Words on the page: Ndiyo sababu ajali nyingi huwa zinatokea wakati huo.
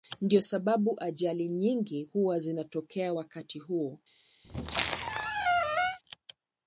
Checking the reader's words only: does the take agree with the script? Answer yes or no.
yes